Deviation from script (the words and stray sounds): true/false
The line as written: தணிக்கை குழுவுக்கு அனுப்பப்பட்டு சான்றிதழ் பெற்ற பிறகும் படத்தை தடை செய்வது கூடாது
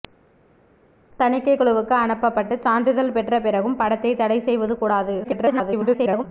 true